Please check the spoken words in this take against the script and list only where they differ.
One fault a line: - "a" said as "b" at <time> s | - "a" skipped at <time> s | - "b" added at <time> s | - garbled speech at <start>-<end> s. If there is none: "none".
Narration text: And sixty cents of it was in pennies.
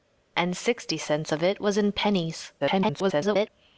- garbled speech at 2.6-3.5 s